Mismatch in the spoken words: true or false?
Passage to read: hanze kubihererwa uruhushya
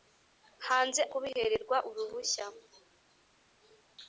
false